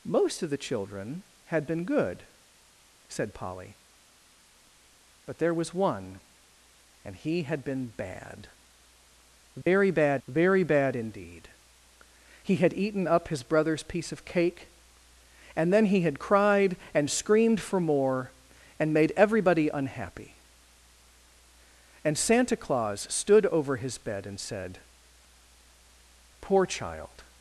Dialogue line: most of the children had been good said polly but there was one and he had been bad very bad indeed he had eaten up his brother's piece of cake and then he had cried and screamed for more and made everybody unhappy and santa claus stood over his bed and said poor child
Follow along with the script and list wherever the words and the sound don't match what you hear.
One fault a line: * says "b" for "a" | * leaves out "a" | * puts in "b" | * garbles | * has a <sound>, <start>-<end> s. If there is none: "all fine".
* has a dropout, 9.6-9.7 s
* puts in "very bad"